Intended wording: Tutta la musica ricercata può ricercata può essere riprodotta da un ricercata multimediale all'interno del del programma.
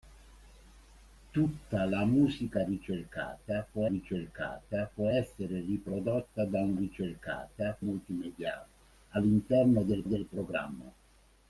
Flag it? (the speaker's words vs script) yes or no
no